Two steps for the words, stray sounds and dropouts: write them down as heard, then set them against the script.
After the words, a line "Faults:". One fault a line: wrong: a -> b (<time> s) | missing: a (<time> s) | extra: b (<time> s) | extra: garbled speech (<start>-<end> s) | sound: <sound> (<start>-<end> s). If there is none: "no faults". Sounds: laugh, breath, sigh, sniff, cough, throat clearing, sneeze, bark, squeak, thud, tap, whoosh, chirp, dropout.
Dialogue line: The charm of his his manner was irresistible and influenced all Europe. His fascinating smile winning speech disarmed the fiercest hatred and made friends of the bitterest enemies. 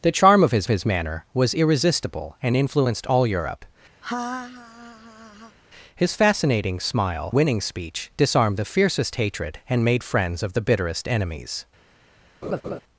The charm of his his manner was irresistible and influenced all Europe. His fascinating smile winning speech disarmed the fiercest hatred and made friends of the bitterest enemies.
Faults:
sound: laugh (4.0-5.6 s)
sound: laugh (12.4-12.8 s)